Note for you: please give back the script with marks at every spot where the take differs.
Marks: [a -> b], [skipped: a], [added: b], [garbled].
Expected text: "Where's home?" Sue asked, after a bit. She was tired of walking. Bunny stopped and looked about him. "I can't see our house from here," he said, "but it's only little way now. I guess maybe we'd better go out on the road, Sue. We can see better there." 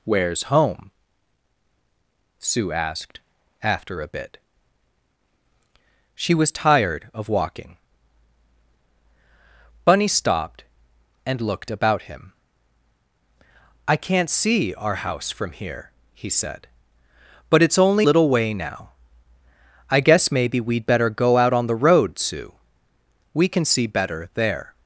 "Where's home?" Sue asked, after a bit. She was tired of walking. Bunny stopped and looked about him. "I can't see our house from here," he said, "but it's only little way now. I guess maybe we'd better go out on the road, Sue. We can see better there."